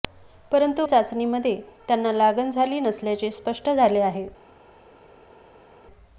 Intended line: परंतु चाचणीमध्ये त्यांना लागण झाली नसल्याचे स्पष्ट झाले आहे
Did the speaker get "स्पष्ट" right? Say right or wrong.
right